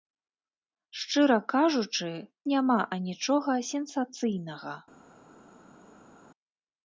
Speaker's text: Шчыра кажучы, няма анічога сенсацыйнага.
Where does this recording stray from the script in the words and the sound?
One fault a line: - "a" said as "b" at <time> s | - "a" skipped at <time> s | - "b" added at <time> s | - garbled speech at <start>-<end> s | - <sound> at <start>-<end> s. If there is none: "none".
none